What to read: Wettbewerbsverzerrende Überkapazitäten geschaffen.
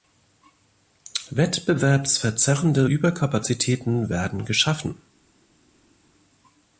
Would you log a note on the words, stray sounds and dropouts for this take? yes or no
yes